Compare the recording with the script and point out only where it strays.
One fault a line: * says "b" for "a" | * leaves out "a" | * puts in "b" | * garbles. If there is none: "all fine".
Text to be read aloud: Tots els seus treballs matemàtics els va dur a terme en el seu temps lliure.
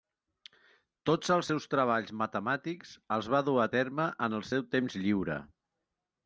all fine